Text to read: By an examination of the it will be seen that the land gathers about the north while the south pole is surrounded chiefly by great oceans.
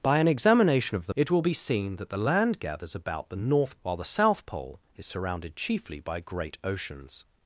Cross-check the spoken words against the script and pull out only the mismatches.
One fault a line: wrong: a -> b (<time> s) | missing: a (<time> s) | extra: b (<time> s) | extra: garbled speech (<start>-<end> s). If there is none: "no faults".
no faults